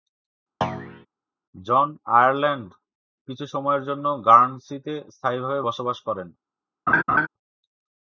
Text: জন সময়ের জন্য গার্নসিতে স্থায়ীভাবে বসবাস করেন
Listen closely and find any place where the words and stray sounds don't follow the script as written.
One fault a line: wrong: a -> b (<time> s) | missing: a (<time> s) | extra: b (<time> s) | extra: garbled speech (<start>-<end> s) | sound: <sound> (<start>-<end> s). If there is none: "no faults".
sound: thud (0.6-1.1 s)
extra: আয়ারল্যান্ড কিছু (2.1 s)
sound: laugh (6.9-7.3 s)